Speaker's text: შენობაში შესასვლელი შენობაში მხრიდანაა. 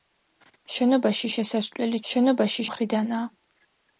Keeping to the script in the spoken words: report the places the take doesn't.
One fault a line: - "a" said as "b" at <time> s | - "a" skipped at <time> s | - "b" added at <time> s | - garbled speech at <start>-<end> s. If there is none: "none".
none